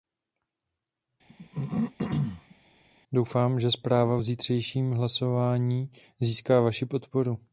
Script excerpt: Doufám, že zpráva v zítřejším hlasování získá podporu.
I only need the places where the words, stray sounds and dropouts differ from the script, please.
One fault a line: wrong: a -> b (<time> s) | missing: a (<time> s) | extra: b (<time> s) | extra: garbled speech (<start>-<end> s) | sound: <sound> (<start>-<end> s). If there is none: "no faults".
sound: throat clearing (1.3-2.6 s)
extra: vaši (6.6 s)